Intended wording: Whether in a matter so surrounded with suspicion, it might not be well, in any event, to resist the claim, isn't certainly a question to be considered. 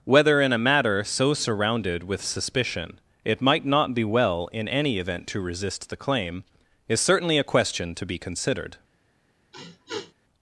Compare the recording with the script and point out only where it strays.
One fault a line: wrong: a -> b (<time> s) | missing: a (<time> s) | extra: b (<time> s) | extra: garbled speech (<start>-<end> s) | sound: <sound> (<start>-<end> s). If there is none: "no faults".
wrong: isn't -> is (6.9 s)
sound: sniff (9.5-10.1 s)